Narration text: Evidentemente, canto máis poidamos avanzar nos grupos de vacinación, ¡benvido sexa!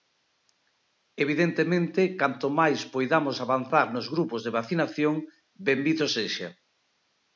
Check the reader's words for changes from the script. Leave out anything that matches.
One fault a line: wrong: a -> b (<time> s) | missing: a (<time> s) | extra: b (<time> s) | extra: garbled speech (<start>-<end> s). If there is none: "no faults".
no faults